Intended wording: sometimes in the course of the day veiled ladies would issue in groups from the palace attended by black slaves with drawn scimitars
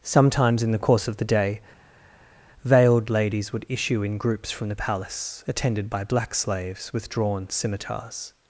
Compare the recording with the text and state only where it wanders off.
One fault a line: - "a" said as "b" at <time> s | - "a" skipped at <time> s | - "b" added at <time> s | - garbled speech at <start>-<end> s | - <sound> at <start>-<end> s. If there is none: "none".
none